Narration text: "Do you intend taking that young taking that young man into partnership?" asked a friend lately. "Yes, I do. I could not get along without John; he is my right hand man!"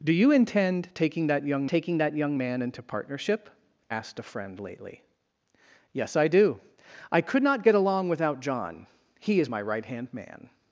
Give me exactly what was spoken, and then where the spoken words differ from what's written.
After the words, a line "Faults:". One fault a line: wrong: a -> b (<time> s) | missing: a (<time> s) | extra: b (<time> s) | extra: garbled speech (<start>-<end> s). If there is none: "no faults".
"Do you intend taking that young taking that young man into partnership?" asked a friend lately. "Yes, I do. I could not get along without John; he is my right hand man!"
Faults:
no faults